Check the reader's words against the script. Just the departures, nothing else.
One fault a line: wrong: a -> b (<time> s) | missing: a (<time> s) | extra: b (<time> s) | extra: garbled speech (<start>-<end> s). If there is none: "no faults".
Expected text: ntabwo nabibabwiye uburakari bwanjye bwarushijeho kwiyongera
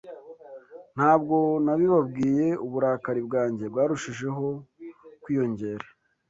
no faults